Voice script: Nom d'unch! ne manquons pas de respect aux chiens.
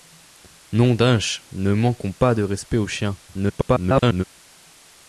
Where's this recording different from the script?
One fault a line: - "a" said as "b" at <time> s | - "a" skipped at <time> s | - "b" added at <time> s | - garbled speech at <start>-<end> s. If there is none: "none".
- garbled speech at 3.3-4.2 s